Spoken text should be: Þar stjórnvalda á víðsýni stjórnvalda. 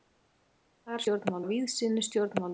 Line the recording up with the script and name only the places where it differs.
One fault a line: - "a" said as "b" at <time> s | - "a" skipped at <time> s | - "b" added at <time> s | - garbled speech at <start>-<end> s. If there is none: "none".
none